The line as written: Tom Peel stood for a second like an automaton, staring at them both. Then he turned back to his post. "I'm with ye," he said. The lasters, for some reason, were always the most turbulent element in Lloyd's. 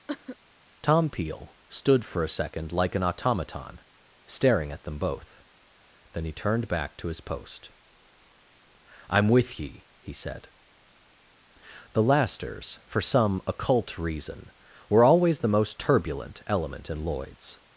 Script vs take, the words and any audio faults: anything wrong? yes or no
yes